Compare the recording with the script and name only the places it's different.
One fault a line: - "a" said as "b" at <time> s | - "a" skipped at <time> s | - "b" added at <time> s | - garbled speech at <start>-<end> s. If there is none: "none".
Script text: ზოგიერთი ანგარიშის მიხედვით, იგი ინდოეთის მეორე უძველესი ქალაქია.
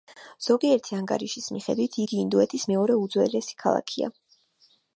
none